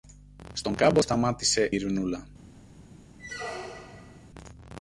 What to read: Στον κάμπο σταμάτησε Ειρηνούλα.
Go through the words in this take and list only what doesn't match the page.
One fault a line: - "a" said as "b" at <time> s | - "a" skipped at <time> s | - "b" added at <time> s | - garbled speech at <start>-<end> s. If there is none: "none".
none